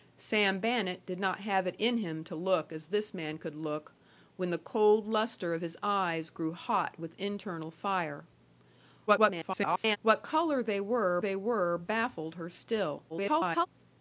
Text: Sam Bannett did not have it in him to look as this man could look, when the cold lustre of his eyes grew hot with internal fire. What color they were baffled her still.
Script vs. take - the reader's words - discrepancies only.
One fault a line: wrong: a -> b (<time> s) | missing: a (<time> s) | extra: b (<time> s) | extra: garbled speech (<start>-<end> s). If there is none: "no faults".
extra: garbled speech (9.1-10.0 s)
extra: they were (11.2 s)
extra: garbled speech (13.1-13.7 s)